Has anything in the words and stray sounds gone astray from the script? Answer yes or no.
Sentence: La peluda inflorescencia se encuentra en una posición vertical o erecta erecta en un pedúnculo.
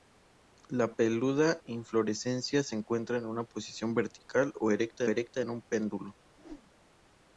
yes